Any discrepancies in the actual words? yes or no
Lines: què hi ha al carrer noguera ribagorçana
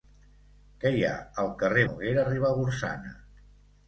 no